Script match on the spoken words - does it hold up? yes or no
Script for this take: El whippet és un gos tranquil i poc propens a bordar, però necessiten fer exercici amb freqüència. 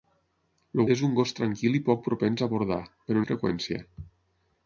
no